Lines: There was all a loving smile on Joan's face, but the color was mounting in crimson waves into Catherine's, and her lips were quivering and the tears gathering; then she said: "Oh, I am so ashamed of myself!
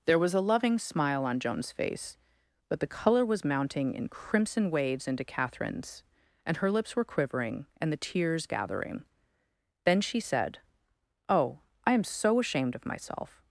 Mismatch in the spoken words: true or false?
true